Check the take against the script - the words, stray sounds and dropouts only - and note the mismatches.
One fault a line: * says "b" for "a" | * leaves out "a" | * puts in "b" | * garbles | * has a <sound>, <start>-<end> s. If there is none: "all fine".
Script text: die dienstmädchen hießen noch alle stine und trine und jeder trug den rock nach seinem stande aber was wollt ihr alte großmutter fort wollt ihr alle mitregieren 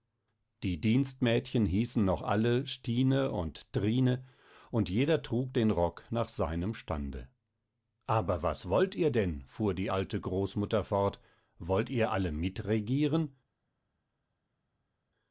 * puts in "denn fuhr die"